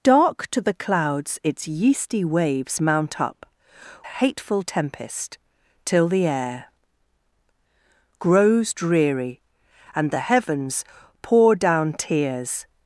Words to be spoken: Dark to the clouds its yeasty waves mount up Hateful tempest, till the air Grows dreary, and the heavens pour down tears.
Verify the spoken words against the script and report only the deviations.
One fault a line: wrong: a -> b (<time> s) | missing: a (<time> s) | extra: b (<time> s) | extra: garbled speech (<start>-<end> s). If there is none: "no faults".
no faults